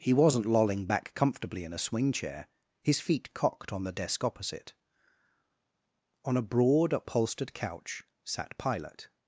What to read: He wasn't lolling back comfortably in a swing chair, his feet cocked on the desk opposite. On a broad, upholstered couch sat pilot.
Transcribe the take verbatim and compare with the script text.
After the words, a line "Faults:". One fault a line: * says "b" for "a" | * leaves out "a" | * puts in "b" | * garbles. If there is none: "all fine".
He wasn't lolling back comfortably in a swing chair, his feet cocked on the desk opposite. On a broad, upholstered couch sat pilot.
Faults:
all fine